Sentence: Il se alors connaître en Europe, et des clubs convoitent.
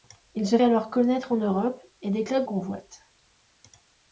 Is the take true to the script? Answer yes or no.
yes